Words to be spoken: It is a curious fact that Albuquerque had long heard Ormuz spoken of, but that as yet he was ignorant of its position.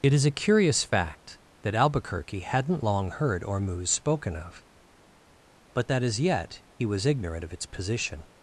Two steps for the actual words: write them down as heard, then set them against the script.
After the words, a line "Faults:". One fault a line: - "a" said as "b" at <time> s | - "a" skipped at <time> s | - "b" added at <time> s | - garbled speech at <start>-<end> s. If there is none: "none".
It is a curious fact that Albuquerque hadn't long heard Ormuz spoken of, but that as yet he was ignorant of its position.
Faults:
- "had" said as "hadn't" at 2.4 s